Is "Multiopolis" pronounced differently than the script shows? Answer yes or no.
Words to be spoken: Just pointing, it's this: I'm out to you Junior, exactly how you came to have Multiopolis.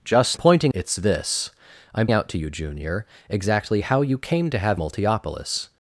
no